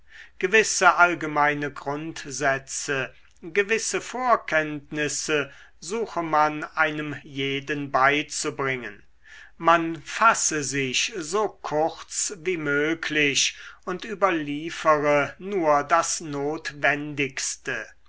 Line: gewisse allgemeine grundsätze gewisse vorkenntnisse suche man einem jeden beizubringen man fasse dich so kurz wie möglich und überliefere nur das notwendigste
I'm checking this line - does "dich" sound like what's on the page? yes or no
no